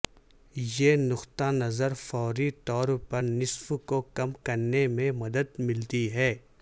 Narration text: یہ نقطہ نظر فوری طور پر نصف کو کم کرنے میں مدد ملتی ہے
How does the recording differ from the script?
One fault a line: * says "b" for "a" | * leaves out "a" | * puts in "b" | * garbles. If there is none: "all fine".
all fine